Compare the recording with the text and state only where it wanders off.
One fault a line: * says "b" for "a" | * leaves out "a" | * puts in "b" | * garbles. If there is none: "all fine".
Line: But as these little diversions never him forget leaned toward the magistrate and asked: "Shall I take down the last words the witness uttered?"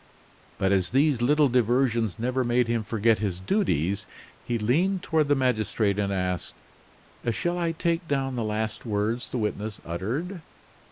* puts in "made"
* puts in "his duties he"